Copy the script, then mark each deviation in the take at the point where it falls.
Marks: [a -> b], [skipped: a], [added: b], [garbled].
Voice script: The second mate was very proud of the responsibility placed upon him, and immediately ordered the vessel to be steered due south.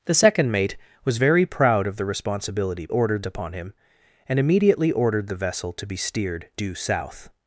The second mate was very proud of the responsibility [placed -> ordered] upon him, and immediately ordered the vessel to be steered due south.